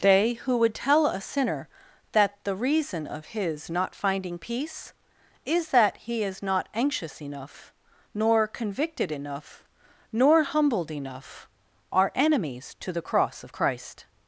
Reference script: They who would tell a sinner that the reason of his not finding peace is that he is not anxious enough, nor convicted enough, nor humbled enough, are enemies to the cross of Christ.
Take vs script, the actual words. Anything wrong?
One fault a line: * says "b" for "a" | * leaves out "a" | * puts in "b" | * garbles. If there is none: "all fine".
all fine